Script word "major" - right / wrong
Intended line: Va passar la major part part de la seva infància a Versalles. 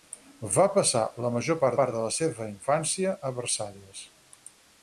right